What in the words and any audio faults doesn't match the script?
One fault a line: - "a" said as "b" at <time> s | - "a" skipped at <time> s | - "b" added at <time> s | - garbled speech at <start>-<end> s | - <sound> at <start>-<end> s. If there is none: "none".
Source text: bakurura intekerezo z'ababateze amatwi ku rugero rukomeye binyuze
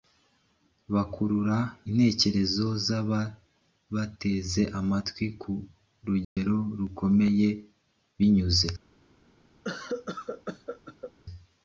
- dropout at 6.2-6.4 s
- cough at 9.6-11.1 s